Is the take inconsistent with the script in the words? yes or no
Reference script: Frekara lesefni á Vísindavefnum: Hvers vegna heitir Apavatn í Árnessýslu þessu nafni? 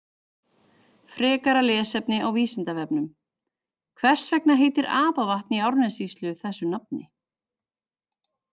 no